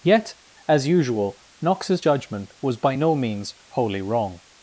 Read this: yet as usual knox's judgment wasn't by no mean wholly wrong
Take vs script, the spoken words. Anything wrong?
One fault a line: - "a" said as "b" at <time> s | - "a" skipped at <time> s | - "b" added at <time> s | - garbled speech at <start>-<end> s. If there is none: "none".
- "wasn't" said as "was" at 2.6 s
- "mean" said as "means" at 3.1 s